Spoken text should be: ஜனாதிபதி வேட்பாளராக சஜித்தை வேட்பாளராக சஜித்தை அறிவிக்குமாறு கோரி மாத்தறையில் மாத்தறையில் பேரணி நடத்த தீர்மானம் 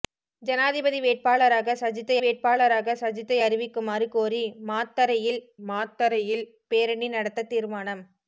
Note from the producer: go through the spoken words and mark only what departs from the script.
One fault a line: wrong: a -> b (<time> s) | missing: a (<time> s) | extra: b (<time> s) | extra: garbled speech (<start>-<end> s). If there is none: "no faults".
no faults